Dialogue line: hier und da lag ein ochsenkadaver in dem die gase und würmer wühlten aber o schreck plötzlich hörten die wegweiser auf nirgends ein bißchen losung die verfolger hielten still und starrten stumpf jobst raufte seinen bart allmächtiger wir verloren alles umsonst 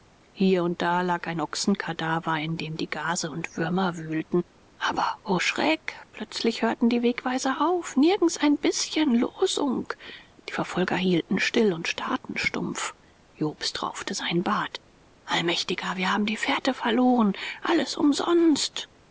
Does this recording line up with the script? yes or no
no